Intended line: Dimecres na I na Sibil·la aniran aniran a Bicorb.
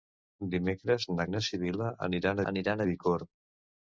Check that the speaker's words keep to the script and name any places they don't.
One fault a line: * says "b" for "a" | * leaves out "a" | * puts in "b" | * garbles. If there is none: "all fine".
all fine